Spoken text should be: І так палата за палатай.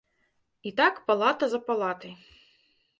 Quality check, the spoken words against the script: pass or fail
pass